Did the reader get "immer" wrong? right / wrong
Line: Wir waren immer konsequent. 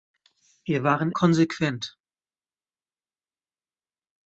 wrong